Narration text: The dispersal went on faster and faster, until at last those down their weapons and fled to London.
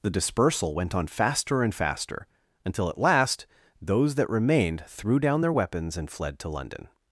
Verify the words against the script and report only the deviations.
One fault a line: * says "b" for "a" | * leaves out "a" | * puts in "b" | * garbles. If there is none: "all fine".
* puts in "that remained threw"